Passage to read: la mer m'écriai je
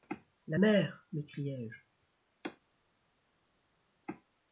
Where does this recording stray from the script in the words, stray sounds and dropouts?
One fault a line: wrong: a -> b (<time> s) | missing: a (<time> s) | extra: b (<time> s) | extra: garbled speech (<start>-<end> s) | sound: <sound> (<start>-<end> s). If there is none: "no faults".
no faults